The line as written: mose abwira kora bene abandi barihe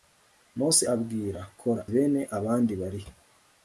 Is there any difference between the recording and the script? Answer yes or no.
no